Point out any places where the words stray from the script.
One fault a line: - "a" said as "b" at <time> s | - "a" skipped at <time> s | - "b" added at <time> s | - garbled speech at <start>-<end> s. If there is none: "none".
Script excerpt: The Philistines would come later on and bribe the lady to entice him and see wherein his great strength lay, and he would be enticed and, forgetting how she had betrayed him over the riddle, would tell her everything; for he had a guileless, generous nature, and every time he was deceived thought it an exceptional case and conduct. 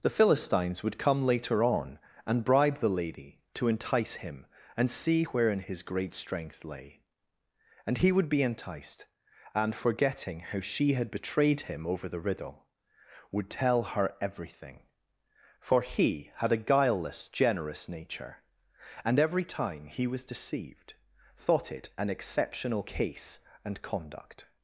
none